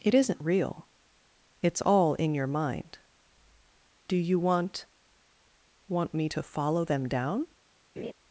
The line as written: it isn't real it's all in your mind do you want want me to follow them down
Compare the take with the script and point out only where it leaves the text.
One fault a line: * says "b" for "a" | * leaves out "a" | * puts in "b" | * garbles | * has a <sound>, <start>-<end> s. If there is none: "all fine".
* has a laugh, 8.0-8.1 s